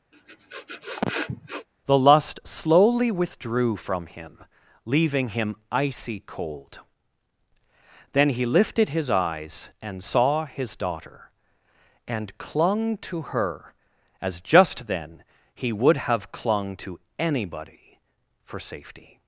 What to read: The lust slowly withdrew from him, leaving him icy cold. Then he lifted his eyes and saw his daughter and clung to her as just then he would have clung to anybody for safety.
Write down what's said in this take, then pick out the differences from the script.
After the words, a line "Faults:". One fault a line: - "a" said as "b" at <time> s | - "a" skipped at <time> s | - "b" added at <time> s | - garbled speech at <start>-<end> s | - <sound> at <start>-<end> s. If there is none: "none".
The lust slowly withdrew from him, leaving him icy cold. Then he lifted his eyes and saw his daughter and clung to her as just then he would have clung to anybody for safety.
Faults:
- sniff at 0.1-1.7 s